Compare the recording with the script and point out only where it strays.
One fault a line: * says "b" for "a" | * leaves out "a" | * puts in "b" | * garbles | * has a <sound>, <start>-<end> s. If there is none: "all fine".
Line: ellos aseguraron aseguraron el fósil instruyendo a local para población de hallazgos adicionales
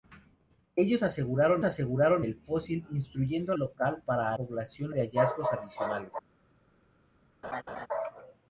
* has a laugh, 7.4-7.9 s